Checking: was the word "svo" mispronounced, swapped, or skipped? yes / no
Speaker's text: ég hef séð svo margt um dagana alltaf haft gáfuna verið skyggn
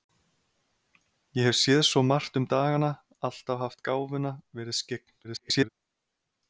no